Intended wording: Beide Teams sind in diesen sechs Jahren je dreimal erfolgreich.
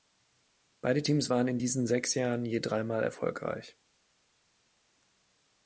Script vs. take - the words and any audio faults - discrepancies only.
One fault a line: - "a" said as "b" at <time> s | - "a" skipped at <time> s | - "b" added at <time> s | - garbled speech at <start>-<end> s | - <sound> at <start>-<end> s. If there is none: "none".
- "sind" said as "waren" at 1.3 s